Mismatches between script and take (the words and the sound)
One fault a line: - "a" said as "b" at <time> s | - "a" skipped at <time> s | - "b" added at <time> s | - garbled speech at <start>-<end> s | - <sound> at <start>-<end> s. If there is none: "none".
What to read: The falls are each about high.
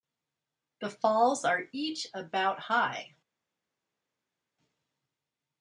none